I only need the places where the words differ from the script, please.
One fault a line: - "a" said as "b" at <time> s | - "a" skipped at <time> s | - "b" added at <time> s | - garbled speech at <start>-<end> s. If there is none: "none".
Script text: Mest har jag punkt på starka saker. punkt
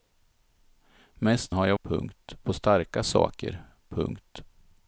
none